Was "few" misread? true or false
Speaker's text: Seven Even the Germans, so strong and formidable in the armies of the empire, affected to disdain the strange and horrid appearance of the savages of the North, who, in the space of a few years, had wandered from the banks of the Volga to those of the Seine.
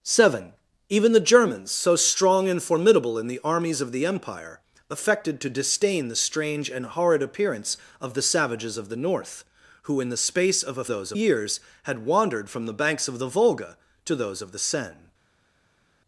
true